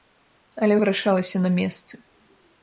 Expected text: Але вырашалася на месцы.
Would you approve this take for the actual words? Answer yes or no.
yes